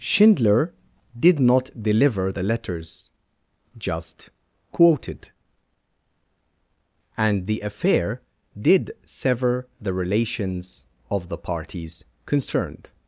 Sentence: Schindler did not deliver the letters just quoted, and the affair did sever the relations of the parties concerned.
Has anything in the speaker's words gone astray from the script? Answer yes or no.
no